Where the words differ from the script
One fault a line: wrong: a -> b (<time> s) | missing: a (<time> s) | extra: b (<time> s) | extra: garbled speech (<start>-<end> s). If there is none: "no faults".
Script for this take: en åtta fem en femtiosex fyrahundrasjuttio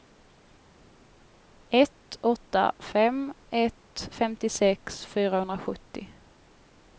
wrong: en -> ett (1.7 s)
wrong: en -> ett (3.5 s)